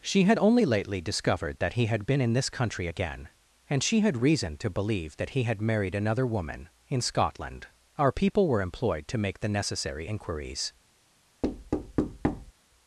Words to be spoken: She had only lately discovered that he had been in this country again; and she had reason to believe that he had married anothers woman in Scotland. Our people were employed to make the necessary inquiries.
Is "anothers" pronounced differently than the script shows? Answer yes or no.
yes